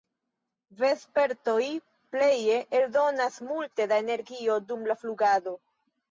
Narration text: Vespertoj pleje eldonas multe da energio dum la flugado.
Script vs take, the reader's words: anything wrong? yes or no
no